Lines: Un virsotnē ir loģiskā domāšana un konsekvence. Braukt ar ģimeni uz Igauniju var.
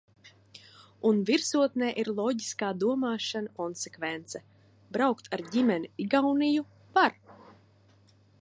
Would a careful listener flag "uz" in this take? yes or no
yes